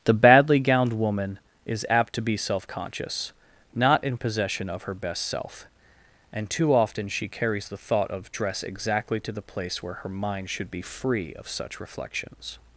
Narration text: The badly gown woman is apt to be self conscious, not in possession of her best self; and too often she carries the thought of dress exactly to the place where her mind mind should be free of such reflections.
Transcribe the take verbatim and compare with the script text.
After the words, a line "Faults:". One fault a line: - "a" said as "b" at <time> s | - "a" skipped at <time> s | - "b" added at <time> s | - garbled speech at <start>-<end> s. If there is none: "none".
The badly gowned woman is apt to be self conscious, not in possession of her best self; and too often she carries the thought of dress exactly to the place where her mind should be free of such reflections.
Faults:
- "gown" said as "gowned" at 0.6 s
- "mind" skipped at 10.5 s